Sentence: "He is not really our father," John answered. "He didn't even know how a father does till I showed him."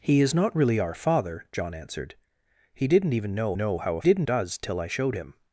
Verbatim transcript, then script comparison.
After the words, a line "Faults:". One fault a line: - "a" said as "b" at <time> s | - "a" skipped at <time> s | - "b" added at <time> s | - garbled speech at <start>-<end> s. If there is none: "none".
"He is not really our father," John answered. "He didn't even know know how a didn't does till I showed him."
Faults:
- "know" added at 3.6 s
- "father" said as "didn't" at 4.0 s